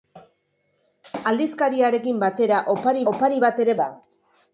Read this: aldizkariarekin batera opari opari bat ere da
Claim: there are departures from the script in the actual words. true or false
false